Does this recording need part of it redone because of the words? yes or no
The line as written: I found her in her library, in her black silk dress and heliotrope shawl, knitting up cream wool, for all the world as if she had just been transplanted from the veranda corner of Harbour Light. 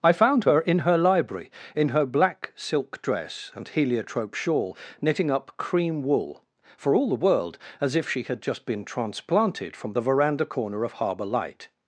no